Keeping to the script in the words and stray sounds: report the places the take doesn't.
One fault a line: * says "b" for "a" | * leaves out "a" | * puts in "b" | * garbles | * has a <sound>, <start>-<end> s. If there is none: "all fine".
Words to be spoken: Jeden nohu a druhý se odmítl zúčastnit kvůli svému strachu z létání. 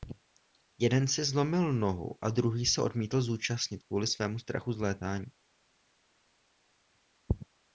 * puts in "si zlomil"